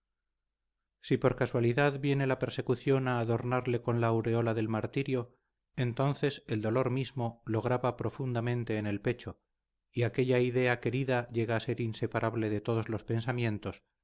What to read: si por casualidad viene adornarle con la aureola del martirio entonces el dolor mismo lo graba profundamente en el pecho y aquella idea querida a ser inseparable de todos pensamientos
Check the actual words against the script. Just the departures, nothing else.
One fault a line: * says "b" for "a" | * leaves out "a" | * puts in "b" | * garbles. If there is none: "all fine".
* puts in "la persecución a"
* puts in "llega"
* puts in "los"